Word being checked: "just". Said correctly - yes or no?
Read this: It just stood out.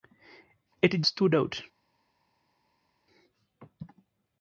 no